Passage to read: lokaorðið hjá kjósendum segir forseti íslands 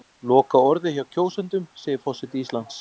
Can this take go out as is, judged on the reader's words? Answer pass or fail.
pass